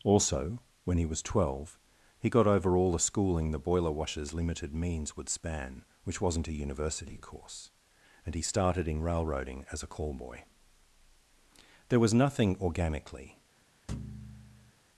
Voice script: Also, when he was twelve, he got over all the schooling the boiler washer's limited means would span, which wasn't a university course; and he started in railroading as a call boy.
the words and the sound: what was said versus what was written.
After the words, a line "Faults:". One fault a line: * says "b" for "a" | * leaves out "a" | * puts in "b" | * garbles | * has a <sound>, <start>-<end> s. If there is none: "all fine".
Also, when he was twelve, he got over all the schooling the boiler washer's limited means would span, which wasn't a university course; and he started in railroading as a call boy. There was nothing organically
Faults:
* puts in "There was nothing organically"
* has a thud, 13.9-14.7 s